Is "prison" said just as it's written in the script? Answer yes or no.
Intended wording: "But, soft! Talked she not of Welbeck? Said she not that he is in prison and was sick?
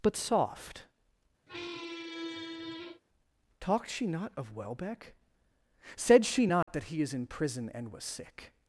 yes